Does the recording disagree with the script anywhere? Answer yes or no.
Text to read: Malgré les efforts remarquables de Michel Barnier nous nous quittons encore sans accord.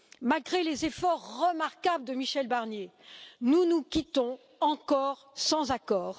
no